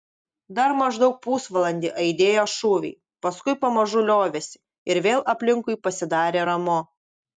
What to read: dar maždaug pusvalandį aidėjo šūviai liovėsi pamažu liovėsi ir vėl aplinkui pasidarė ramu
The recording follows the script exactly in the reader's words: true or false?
false